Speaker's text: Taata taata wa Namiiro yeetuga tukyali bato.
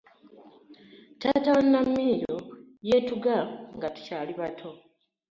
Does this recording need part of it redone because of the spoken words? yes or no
yes